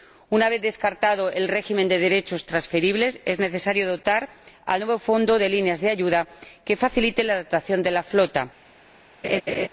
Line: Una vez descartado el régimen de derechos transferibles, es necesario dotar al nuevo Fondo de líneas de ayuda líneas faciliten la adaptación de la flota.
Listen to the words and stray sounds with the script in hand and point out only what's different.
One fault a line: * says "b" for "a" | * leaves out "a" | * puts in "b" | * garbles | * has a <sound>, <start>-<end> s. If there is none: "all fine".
* says "que" for "líneas"
* has a laugh, 9.2-9.7 s